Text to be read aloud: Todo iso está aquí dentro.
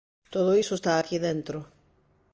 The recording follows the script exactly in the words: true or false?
true